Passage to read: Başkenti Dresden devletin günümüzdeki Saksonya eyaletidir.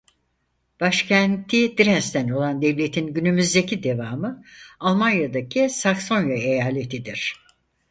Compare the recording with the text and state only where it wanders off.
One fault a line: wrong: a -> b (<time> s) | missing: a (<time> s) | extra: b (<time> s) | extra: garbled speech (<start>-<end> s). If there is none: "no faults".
extra: olan (2.3 s)
extra: devamı Almanya'daki (3.8 s)